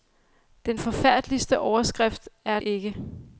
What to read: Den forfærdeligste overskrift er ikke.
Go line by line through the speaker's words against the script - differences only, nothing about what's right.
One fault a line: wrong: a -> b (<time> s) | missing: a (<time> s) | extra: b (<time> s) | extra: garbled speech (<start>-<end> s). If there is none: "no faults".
no faults